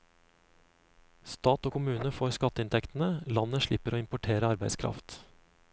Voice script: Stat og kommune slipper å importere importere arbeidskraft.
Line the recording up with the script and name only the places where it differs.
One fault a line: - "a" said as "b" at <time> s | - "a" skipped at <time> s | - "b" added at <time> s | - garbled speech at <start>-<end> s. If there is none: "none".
- "får skatteinntektene landet" added at 2.2 s
- "importere" skipped at 4.5 s